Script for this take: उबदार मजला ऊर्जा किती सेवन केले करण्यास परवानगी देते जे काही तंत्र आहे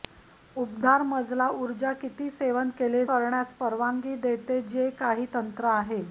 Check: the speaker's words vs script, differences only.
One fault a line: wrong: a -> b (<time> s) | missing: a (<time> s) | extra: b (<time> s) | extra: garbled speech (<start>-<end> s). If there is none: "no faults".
no faults